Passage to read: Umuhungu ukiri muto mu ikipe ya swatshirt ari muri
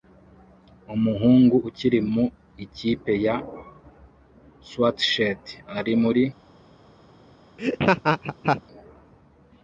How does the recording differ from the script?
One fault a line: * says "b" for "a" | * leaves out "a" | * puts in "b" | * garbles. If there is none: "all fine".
* leaves out "muto"